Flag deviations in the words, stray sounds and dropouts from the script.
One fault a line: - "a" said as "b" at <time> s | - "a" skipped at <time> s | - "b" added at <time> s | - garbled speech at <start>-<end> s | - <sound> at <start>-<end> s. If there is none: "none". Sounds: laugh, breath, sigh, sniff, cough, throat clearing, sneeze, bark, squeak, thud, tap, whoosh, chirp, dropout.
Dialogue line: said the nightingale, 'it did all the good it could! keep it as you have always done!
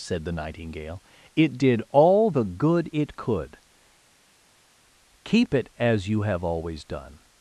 none